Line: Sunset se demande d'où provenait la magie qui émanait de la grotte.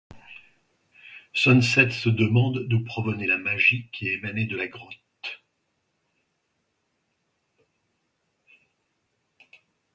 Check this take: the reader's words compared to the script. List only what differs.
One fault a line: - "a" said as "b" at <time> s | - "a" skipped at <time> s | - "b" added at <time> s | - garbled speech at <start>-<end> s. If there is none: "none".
none